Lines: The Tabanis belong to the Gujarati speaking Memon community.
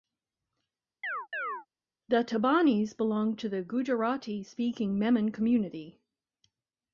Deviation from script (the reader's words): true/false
false